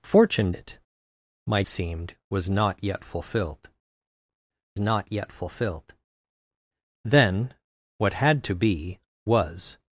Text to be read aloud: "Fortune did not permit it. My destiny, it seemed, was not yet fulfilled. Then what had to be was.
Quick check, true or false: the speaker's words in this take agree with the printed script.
false